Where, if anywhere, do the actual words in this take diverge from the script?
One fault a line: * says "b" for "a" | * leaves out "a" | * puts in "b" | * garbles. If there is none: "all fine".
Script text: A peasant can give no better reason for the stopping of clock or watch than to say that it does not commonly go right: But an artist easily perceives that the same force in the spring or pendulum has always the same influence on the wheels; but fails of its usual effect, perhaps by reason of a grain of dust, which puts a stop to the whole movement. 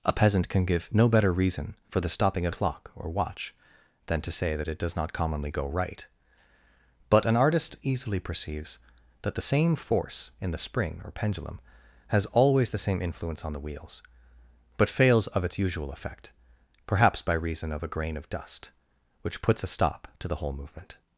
all fine